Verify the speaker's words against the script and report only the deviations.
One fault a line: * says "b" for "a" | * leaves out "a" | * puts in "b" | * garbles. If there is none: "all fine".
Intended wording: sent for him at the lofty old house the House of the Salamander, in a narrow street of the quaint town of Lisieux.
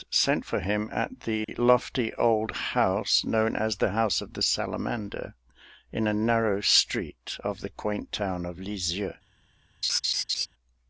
* puts in "known as"